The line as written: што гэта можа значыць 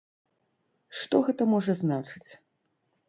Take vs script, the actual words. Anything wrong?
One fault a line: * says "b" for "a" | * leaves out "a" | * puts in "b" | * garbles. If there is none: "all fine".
all fine